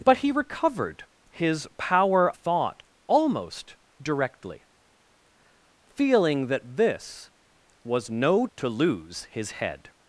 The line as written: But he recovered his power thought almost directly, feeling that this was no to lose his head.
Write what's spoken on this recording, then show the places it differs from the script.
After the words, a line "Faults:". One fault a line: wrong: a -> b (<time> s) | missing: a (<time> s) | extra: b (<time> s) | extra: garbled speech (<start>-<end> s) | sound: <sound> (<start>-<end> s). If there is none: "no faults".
But he recovered his power thought almost directly, feeling that this was no to lose his head.
Faults:
no faults